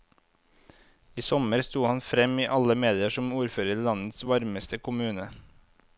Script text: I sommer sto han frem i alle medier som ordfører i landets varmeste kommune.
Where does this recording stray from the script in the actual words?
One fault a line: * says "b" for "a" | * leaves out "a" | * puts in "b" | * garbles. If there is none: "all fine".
all fine